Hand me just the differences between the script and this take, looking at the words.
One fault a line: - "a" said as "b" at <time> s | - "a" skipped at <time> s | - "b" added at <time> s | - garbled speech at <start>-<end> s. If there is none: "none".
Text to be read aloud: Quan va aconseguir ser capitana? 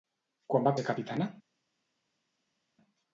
- "aconseguir" skipped at 0.7 s